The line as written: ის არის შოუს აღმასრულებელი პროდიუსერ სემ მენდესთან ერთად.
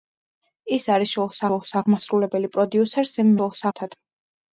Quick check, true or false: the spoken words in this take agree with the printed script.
false